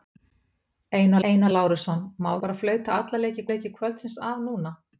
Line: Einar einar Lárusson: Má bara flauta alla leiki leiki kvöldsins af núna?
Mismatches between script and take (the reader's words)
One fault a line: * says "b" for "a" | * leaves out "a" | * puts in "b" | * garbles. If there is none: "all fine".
all fine